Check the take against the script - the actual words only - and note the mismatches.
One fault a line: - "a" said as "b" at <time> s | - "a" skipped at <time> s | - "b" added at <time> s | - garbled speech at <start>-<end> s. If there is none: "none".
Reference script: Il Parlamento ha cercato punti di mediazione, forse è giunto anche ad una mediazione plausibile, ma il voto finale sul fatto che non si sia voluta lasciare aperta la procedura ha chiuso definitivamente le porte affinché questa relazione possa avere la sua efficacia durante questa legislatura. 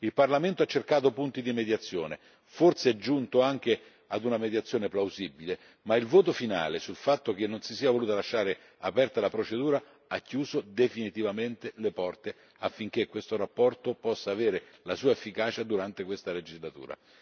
none